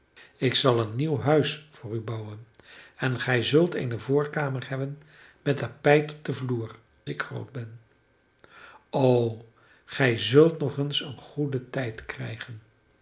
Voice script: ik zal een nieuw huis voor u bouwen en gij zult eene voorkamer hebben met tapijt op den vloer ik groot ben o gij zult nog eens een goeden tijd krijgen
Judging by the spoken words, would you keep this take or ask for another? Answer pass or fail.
pass